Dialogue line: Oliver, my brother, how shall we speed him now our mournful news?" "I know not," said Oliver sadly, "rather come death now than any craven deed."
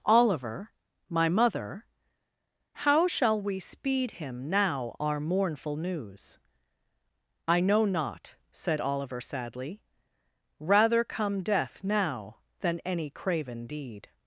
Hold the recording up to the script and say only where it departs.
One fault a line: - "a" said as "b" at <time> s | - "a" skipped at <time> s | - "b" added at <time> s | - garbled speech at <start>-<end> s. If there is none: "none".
- "brother" said as "mother" at 1.3 s